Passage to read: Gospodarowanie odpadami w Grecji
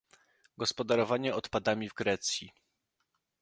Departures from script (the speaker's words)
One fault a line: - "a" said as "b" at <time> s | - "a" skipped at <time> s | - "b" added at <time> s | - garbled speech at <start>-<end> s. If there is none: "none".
none